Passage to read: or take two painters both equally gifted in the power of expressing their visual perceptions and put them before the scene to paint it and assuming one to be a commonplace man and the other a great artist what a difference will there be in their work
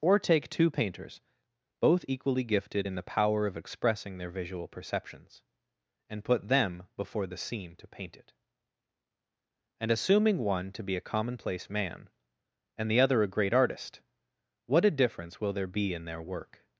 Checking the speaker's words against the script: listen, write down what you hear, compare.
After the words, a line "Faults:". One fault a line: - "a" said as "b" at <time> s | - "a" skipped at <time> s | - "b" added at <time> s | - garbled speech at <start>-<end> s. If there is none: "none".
or take two painters both equally gifted in the power of expressing their visual perceptions and put them before the scene to paint it and assuming one to be a commonplace man and the other a great artist what a difference will there be in their work
Faults:
none